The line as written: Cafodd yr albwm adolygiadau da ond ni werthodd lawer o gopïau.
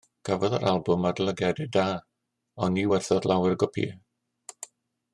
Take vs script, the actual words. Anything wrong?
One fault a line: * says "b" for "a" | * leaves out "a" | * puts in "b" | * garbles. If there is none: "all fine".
all fine